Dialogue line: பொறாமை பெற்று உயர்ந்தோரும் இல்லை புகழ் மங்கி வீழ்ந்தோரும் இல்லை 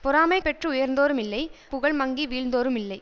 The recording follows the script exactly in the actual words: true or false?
true